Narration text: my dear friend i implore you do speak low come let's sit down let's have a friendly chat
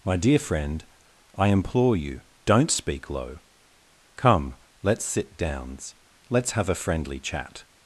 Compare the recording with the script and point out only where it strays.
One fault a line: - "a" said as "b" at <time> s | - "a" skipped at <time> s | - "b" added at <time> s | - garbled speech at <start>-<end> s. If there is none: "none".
- "do" said as "don't" at 2.5 s
- "down" said as "downs" at 5.4 s